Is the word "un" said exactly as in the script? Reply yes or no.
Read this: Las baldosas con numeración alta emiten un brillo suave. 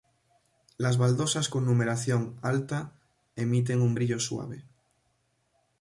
yes